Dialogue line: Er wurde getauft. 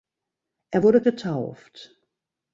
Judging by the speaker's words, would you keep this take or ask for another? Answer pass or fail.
pass